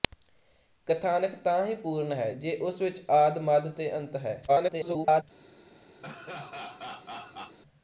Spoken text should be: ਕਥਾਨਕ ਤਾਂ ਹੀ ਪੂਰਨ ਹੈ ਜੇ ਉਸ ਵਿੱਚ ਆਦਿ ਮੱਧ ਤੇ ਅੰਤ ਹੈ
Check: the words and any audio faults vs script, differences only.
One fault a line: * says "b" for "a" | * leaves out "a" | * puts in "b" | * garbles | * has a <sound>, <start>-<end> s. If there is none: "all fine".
* garbles
* has a laugh, 6.0-7.6 s